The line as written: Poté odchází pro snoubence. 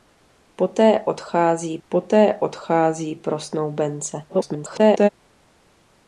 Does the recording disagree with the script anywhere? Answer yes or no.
yes